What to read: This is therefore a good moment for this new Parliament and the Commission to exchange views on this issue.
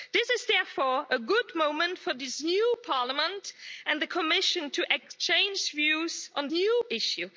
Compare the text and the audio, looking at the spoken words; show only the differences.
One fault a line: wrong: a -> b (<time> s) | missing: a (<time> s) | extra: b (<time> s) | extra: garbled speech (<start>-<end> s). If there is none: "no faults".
wrong: this -> new (6.5 s)